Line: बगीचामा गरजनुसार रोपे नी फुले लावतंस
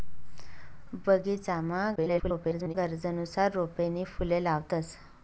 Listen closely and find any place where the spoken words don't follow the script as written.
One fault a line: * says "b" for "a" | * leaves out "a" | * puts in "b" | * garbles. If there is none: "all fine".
* garbles